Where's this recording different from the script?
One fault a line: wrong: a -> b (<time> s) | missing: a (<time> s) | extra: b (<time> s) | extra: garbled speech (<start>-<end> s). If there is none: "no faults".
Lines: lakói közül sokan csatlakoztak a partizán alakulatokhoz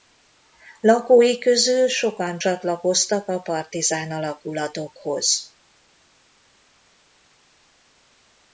no faults